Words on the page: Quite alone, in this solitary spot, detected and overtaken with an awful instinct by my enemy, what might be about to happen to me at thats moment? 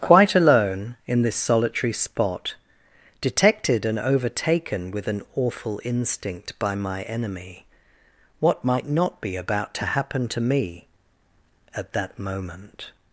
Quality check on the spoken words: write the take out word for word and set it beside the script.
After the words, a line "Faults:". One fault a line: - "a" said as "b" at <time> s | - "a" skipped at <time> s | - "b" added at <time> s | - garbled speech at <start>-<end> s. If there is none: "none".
Quite alone, in this solitary spot, detected and overtaken with an awful instinct by my enemy, what might not be about to happen to me at that moment?
Faults:
- "not" added at 8.9 s
- "thats" said as "that" at 11.9 s